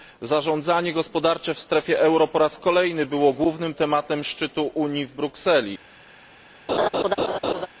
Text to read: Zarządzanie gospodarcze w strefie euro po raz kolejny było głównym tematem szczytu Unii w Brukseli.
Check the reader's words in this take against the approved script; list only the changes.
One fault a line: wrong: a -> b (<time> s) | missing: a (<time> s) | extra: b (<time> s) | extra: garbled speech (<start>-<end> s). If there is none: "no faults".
no faults